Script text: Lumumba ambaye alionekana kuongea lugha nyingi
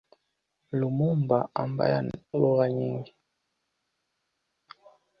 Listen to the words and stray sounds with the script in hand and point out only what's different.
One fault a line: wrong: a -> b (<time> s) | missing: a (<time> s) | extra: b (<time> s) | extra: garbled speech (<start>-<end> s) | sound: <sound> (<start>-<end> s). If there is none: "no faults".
missing: alionekana kuongea (2.1 s)